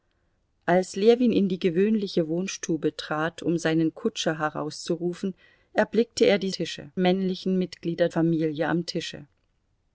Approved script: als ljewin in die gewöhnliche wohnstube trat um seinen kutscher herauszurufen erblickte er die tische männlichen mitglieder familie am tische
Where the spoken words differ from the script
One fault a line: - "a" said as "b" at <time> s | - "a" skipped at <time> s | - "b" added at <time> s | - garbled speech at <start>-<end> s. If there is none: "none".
none